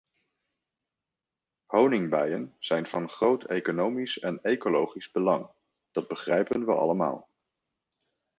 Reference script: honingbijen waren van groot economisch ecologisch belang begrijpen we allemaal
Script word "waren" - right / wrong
wrong